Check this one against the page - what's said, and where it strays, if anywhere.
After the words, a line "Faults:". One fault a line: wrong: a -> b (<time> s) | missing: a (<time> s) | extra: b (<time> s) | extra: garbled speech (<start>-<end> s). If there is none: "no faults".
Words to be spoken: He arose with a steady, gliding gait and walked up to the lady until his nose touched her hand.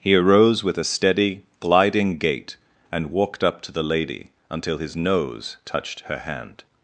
He arose with a steady, gliding gait and walked up to the lady until his nose touched her hand.
Faults:
no faults